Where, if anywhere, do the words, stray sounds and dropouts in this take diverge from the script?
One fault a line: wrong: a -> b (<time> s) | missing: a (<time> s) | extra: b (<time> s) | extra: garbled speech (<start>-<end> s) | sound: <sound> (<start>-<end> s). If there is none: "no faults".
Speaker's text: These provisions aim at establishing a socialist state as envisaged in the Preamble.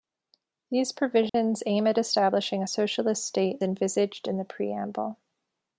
sound: dropout (1.3-1.3 s)
missing: as (3.6 s)